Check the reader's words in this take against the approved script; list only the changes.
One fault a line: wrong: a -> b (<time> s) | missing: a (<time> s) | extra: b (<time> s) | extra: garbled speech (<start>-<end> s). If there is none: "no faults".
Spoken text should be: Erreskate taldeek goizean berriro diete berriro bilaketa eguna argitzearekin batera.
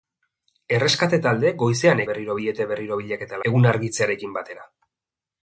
no faults